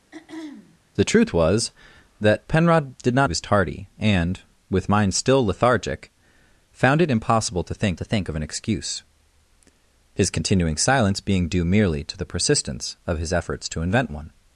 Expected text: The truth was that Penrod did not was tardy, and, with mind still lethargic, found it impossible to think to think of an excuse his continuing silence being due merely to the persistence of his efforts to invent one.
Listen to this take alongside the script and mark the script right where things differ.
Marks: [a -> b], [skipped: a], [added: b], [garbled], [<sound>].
[throat clearing] The truth was that Penrod did not was tardy, and, with mind still lethargic, found it impossible to think to think of an excuse his continuing silence being due merely to the persistence of his efforts to invent one.